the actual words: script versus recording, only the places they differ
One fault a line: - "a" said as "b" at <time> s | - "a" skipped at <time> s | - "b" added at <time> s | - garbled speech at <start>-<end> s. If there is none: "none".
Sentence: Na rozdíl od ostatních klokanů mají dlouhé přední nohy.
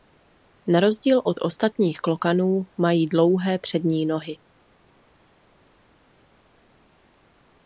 none